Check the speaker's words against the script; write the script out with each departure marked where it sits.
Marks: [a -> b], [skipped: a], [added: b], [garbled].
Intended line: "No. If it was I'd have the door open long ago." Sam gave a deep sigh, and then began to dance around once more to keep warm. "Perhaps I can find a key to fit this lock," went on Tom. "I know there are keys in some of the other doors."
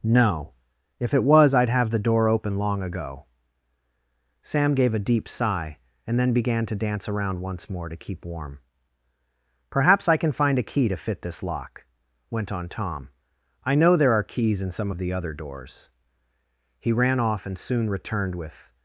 "No. If it was I'd have the door open long ago." Sam gave a deep sigh, and then began to dance around once more to keep warm. "Perhaps I can find a key to fit this lock," went on Tom. "I know there are keys in some of the other doors." [added: He ran off and soon returned with]